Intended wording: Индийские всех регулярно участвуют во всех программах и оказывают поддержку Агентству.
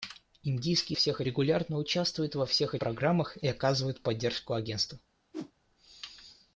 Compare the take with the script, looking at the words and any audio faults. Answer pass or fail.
fail